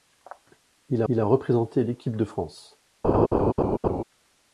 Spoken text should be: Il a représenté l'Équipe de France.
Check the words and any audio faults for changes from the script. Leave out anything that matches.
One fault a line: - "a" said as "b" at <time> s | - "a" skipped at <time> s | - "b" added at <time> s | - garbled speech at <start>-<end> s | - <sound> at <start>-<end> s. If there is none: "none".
- "il" added at 1.1 s
- laugh at 3.0-4.0 s